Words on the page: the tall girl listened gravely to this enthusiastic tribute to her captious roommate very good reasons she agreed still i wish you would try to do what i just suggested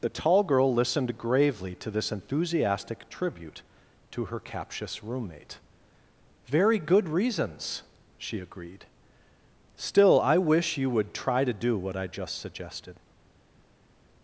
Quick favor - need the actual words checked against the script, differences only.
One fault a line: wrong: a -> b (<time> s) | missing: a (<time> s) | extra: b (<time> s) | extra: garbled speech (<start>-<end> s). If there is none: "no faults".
no faults